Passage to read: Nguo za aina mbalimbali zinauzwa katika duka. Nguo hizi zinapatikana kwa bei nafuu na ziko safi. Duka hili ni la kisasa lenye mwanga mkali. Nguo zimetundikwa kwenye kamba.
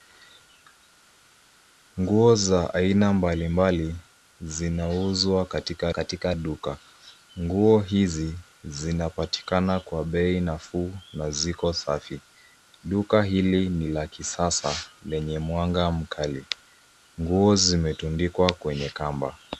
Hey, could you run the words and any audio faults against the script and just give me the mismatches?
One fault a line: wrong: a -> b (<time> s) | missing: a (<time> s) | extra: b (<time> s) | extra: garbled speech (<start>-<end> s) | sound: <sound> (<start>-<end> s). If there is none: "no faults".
extra: katika (5.9 s)